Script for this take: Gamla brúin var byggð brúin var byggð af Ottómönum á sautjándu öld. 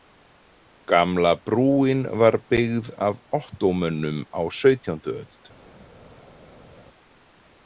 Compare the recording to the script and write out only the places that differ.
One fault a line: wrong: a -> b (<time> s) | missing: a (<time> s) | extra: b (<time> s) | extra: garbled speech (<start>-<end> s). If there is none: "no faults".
missing: brúin var byggð (2.9 s)